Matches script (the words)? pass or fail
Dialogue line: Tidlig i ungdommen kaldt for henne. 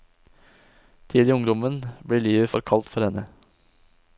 fail